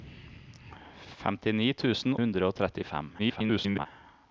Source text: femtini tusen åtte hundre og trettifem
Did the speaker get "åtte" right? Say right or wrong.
wrong